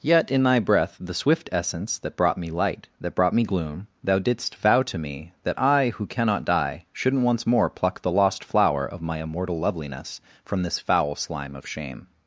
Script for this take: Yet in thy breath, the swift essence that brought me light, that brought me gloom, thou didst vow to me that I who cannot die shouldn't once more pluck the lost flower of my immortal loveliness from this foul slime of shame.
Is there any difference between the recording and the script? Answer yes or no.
no